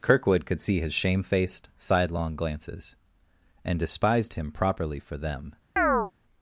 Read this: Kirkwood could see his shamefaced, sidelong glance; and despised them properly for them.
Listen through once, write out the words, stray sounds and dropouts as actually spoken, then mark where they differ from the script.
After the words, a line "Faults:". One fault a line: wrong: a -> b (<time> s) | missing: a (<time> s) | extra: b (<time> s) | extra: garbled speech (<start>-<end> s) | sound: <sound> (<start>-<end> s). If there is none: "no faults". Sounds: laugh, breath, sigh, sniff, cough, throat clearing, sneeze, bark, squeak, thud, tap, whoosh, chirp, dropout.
Kirkwood could see his shamefaced, sidelong glances; and despised him properly for them.
Faults:
wrong: glance -> glances (2.3 s)
wrong: them -> him (4.3 s)
sound: chirp (5.8-6.1 s)